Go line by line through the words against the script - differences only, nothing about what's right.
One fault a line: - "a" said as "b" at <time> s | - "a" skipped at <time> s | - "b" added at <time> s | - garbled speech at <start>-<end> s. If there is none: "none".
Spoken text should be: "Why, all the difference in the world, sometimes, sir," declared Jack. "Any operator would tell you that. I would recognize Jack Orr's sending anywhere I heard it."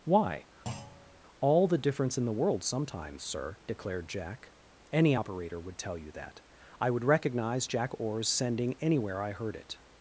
none